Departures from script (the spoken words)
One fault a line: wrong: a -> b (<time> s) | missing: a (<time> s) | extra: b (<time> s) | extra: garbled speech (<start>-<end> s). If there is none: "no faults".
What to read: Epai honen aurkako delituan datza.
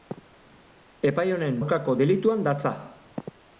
no faults